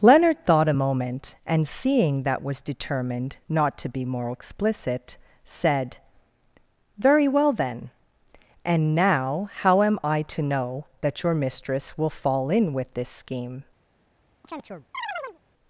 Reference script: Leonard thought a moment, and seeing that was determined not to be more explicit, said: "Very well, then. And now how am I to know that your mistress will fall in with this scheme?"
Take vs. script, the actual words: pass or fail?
pass